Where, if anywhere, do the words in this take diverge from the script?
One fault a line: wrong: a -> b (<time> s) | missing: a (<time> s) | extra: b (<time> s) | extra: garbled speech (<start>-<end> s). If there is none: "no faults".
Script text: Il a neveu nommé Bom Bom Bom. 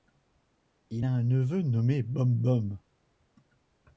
extra: un (1.1 s)
missing: Bom (2.8 s)